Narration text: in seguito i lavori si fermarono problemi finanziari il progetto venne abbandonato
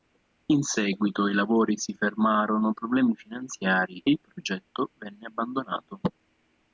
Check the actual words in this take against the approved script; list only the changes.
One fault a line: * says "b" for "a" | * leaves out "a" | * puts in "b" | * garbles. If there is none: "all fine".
all fine